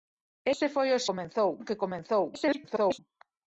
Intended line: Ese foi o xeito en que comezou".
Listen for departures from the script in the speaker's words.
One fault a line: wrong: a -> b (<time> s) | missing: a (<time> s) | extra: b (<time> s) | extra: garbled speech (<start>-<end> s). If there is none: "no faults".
wrong: xeito -> comezou (1.1 s)
extra: garbled speech (2.3-3.0 s)